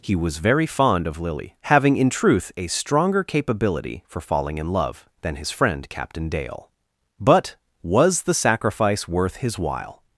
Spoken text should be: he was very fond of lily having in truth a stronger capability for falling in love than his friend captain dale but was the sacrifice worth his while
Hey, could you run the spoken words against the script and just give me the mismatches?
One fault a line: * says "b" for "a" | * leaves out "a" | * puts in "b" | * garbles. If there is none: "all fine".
all fine